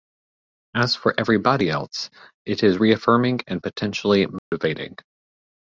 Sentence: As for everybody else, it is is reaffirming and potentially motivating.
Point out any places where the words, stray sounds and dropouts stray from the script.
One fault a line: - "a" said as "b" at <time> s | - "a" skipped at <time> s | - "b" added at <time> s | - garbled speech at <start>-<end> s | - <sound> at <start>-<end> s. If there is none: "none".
- "is" skipped at 2.8 s
- dropout at 4.4-4.5 s